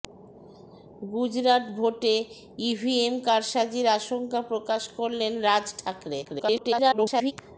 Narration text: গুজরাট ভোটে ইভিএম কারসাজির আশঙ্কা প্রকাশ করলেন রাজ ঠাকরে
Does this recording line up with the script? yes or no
no